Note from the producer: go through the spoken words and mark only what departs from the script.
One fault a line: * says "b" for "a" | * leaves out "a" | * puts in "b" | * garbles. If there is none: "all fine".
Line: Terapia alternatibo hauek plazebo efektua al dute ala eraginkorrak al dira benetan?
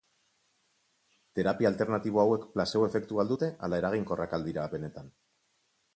all fine